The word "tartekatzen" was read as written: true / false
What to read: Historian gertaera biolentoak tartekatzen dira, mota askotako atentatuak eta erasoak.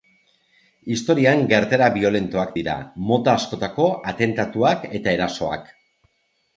false